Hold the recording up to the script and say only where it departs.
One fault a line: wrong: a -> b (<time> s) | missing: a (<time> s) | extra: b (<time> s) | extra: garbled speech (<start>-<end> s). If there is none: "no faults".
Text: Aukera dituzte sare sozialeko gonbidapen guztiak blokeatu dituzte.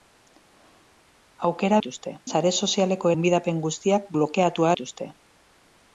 no faults